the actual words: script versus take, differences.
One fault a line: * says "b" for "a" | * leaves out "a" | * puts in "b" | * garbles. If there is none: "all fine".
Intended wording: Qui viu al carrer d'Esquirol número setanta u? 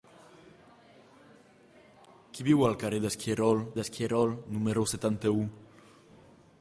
* puts in "d'Esquirol"